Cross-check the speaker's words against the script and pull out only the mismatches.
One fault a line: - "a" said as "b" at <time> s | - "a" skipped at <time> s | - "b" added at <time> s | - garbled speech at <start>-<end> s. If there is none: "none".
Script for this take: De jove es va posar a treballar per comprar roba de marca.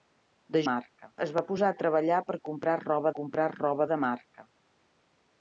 - "jove" said as "marca" at 0.7 s
- "comprar roba" added at 3.2 s